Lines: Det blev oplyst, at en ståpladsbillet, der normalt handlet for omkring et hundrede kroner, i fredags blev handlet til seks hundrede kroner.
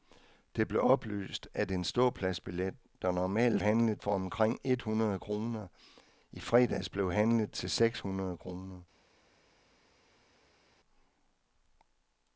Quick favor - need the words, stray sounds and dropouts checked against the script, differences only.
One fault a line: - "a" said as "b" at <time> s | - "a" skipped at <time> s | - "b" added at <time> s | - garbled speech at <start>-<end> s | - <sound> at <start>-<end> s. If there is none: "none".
none